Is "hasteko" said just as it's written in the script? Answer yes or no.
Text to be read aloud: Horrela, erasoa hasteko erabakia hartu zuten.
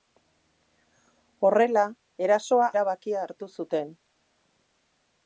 no